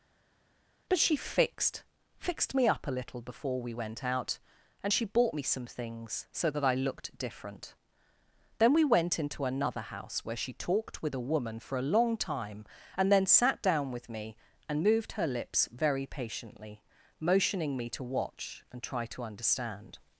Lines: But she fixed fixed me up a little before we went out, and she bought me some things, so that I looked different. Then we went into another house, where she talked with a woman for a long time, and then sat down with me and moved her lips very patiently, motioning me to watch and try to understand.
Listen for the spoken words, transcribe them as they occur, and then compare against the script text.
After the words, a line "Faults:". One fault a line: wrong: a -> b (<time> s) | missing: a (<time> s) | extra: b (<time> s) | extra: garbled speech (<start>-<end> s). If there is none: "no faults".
But she fixed fixed me up a little before we went out, and she bought me some things, so that I looked different. Then we went into another house, where she talked with a woman for a long time, and then sat down with me and moved her lips very patiently, motioning me to watch and try to understand.
Faults:
no faults